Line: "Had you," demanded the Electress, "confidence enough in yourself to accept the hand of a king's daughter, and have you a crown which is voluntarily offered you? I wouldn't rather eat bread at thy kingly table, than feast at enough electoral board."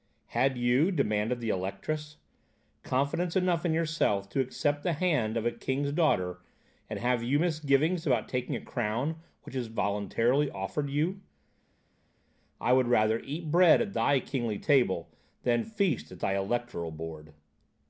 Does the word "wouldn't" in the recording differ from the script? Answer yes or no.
yes